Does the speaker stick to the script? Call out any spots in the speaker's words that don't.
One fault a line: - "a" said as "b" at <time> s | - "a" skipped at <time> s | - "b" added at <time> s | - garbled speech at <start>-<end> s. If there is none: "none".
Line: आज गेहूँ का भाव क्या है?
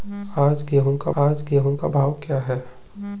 - "आज गेहूँ का" added at 1.2 s